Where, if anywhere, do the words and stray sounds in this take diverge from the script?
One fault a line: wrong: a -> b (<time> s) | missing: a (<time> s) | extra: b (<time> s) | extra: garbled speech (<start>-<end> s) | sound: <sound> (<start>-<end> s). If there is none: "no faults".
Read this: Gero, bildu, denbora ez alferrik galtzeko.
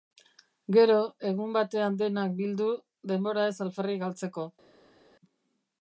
extra: egun batean denak (1.3 s)